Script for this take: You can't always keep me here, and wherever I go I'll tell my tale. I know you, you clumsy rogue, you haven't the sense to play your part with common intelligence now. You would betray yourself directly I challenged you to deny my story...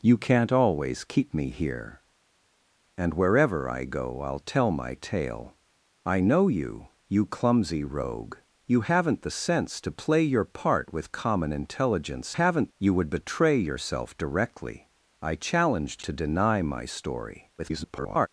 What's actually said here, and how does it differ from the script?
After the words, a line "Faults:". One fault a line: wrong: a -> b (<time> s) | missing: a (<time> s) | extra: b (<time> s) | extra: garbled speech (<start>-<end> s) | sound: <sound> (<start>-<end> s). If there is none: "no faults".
You can't always keep me here, and wherever I go I'll tell my tale. I know you, you clumsy rogue, you haven't the sense to play your part with common intelligence haven't. You would betray yourself directly I challenged to deny my story... [garbled]
Faults:
wrong: now -> haven't (12.3 s)
missing: you (16.0 s)
extra: garbled speech (17.6-18.3 s)